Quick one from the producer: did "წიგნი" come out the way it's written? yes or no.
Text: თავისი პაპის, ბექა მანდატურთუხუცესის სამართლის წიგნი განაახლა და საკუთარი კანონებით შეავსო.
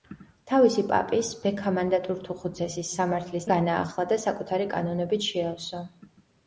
no